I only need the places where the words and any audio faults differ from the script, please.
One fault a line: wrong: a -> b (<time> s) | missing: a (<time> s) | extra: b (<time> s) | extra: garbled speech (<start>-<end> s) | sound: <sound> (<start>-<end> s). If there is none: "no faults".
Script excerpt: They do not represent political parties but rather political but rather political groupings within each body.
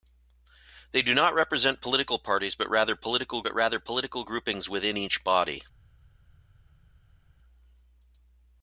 no faults